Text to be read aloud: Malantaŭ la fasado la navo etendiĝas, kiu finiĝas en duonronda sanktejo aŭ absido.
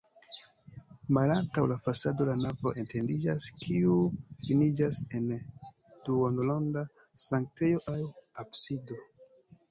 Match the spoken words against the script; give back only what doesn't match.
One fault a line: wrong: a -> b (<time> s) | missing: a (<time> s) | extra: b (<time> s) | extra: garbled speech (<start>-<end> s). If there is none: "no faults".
no faults